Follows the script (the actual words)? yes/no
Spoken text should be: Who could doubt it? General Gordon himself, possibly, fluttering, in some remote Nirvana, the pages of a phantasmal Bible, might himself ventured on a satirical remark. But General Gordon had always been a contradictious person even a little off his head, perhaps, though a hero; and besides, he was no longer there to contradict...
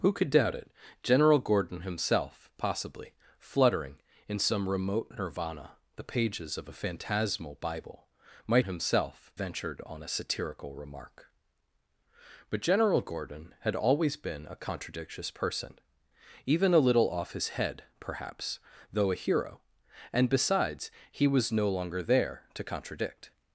yes